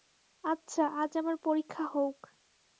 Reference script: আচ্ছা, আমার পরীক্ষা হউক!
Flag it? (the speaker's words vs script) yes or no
yes